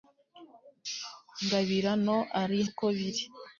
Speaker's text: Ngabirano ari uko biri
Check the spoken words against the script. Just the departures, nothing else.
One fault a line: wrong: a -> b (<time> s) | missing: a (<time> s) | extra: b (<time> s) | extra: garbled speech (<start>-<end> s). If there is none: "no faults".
no faults